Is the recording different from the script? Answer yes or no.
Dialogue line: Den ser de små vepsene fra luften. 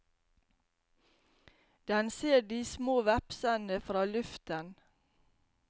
no